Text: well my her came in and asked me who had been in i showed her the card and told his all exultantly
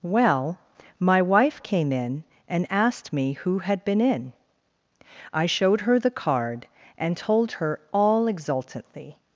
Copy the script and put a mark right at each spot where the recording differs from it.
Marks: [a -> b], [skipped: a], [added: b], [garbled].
well my [her -> wife] came in and asked me who had been in i showed her the card and told [his -> her] all exultantly